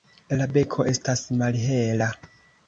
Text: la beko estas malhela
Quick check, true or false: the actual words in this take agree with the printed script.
true